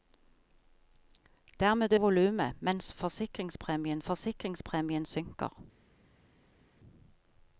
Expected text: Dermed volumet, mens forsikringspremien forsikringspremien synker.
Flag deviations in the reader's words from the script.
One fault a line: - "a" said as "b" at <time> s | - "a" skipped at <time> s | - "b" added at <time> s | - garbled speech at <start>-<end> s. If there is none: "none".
none